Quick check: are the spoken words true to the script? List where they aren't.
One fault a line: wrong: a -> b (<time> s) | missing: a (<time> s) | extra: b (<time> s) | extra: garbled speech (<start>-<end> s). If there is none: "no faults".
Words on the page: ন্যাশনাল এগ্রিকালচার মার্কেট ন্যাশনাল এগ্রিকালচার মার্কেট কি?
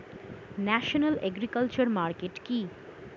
missing: ন্যাশনাল এগ্রিকালচার মার্কেট (2.4 s)